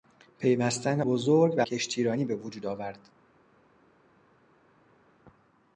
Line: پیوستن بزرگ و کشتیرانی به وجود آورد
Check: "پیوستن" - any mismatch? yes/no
no